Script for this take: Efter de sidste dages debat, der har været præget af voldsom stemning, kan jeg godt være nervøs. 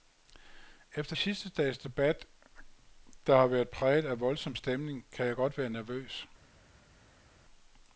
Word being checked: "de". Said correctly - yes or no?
no